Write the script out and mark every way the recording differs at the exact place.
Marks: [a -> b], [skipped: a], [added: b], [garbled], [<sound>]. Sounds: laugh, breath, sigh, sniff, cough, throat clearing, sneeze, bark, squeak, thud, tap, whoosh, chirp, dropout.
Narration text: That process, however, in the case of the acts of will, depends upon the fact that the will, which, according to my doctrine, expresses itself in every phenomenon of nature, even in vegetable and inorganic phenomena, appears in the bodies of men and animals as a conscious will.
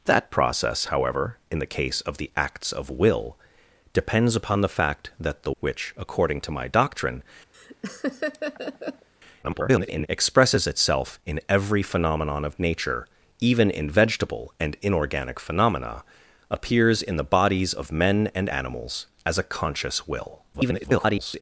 That process, however, in the case of the acts of will, depends upon the fact that the [skipped: will,] which, according to my doctrine, [laugh] [garbled] expresses itself in every phenomenon of nature, even in vegetable and inorganic phenomena, appears in the bodies of men and animals as a conscious will. [garbled]